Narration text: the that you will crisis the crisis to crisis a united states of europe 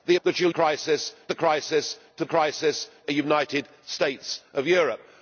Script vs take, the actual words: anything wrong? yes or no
no